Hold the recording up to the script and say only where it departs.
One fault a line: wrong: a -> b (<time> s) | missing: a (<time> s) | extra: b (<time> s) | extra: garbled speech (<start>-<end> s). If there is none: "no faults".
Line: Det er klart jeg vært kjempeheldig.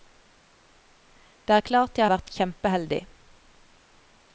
no faults